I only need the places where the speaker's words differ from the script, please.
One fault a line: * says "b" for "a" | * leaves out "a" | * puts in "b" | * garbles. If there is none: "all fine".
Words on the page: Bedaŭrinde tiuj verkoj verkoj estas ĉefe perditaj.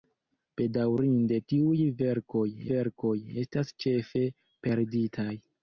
all fine